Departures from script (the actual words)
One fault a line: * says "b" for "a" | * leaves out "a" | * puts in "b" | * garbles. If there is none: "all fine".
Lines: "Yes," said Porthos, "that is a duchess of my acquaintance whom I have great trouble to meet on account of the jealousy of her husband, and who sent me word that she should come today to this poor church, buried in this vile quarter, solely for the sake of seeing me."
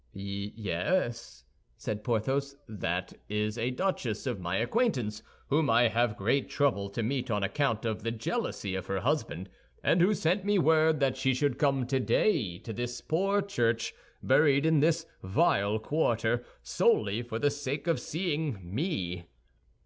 all fine